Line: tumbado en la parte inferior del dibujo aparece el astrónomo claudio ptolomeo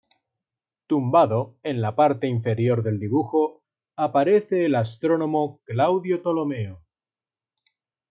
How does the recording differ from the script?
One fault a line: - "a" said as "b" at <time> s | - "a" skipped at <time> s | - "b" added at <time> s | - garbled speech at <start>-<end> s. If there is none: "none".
none